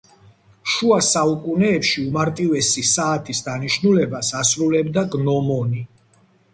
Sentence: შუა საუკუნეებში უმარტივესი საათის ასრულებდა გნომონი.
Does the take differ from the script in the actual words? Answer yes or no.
yes